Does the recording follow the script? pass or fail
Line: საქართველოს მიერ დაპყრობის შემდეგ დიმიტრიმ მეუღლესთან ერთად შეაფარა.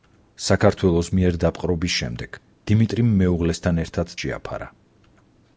pass